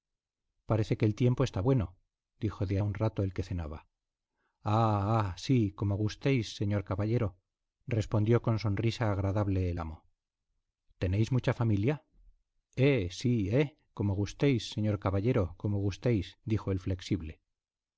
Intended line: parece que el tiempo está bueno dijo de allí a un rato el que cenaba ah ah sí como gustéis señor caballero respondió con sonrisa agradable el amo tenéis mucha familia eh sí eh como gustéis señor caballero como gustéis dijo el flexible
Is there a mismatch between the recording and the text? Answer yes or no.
yes